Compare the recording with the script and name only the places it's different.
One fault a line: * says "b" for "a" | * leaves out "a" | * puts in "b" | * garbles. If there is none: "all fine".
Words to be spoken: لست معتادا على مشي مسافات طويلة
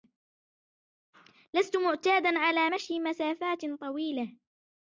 all fine